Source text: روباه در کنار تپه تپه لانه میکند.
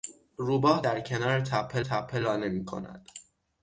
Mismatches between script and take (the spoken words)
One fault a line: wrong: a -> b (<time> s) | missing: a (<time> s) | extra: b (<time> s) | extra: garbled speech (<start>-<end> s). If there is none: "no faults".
no faults